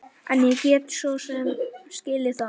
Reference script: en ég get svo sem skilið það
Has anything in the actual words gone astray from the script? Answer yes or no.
no